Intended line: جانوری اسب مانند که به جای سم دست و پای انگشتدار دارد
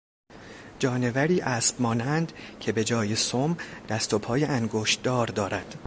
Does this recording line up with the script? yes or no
yes